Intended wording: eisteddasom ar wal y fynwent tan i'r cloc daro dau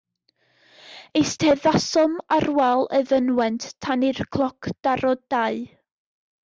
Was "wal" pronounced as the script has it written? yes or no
yes